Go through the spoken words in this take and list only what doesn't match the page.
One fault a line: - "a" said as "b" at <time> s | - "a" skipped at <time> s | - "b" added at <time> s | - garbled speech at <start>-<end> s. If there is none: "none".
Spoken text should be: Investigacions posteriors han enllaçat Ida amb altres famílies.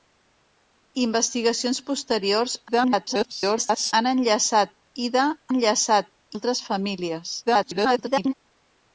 - garbled speech at 2.7-3.9 s
- "amb" said as "enllaçat" at 5.5 s
- garbled speech at 7.5-8.3 s